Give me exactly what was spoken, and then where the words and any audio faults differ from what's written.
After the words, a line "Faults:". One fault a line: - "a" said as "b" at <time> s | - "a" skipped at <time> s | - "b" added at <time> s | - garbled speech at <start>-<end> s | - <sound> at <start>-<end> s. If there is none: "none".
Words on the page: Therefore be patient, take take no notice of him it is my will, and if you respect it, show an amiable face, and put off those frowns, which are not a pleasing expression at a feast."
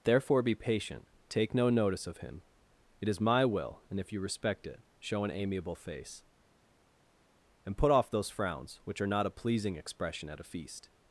Therefore be patient, take no notice of him it is my will, and if you respect it, show an amiable face, and put off those frowns, which are not a pleasing expression at a feast."
Faults:
- "take" skipped at 1.5 s